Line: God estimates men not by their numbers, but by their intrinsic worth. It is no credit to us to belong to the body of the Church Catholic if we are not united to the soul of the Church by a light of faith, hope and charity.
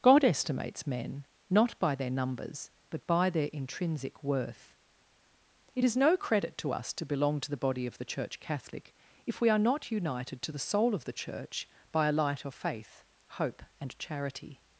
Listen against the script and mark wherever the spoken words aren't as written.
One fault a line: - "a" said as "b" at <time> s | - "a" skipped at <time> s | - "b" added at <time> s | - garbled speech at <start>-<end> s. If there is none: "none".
none